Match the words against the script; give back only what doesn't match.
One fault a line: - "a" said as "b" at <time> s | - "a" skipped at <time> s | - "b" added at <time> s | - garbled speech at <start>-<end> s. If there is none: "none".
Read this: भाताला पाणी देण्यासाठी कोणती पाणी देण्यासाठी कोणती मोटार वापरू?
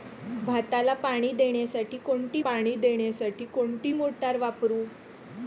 none